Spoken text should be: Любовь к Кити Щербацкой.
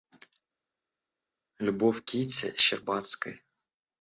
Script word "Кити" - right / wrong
right